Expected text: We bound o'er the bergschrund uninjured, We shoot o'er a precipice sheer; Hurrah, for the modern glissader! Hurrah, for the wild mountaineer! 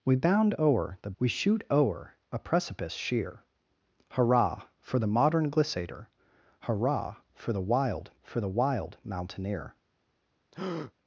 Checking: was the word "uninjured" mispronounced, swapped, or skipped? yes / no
yes